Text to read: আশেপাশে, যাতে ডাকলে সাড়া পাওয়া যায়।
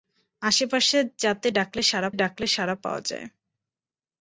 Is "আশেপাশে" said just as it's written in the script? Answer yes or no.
yes